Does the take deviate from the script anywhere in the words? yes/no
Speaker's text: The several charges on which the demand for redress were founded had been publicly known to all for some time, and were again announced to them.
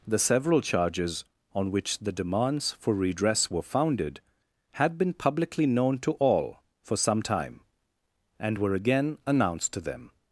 yes